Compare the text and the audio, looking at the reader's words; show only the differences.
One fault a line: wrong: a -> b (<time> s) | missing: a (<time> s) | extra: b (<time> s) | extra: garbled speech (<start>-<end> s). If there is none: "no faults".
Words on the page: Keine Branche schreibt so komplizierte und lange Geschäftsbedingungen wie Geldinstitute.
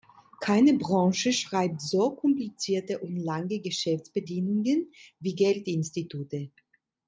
no faults